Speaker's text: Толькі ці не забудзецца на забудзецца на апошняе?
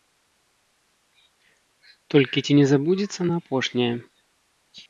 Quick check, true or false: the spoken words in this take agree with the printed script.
false